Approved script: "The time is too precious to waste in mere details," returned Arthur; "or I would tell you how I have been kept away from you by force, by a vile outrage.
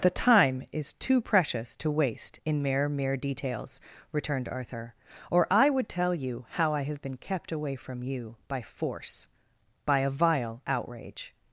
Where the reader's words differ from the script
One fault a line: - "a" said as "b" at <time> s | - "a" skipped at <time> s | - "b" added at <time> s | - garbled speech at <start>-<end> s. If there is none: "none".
- "mere" added at 2.9 s